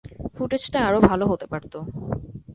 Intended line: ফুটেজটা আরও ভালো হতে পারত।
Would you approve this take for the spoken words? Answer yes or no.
yes